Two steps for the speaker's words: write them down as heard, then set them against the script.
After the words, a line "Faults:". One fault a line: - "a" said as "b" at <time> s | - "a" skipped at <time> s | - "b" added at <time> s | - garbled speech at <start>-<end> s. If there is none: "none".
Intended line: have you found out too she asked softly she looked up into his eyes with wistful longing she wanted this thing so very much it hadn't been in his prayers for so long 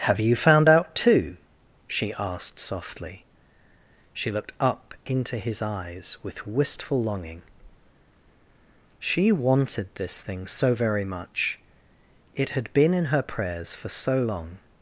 have you found out too she asked softly she looked up into his eyes with wistful longing she wanted this thing so very much it had been in her prayers for so long
Faults:
- "hadn't" said as "had" at 12.5 s
- "his" said as "her" at 13.1 s